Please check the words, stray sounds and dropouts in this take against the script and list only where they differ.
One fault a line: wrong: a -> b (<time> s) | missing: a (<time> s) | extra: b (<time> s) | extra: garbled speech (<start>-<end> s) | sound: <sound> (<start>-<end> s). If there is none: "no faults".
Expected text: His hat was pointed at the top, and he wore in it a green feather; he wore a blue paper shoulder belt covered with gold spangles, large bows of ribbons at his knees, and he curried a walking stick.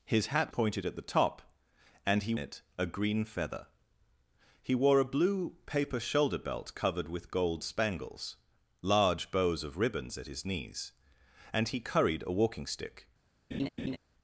missing: was (0.5 s)
missing: wore in (2.3 s)
sound: laugh (13.5-14.0 s)